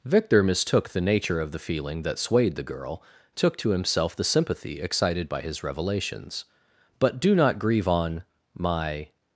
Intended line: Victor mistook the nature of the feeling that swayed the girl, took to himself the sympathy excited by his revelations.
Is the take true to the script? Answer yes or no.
no